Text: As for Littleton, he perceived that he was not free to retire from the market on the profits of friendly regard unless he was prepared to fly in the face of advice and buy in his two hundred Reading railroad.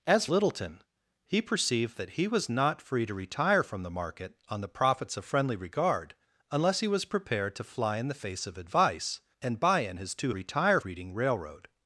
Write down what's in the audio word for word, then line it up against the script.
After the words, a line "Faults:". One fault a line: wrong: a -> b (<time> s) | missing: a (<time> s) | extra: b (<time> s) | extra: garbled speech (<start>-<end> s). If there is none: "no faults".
As Littleton, he perceived that he was not free to retire from the market on the profits of friendly regard unless he was prepared to fly in the face of advice and buy in his two retire Reading railroad.
Faults:
missing: for (0.2 s)
wrong: hundred -> retire (10.3 s)